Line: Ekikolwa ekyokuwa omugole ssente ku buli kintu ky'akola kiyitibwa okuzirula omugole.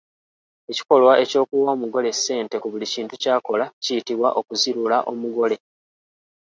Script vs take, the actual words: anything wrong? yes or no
no